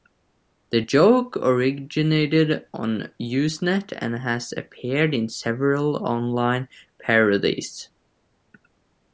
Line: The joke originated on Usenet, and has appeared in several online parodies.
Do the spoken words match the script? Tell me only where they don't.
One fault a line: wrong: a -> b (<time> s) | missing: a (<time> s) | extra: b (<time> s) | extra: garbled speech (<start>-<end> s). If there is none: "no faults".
no faults